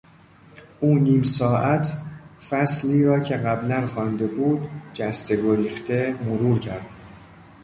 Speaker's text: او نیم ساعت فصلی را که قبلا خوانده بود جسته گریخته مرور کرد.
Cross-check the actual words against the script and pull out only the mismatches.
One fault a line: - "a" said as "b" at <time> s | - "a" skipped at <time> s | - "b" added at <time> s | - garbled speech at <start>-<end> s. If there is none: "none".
none